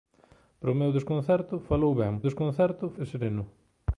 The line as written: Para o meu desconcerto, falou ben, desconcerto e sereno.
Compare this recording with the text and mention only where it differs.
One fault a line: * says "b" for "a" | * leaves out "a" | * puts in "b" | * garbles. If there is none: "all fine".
all fine